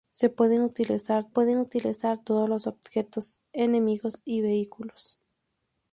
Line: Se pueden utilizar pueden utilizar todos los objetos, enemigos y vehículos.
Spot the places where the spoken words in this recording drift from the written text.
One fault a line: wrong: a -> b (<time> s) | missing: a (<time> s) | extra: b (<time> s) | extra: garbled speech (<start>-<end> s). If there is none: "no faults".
no faults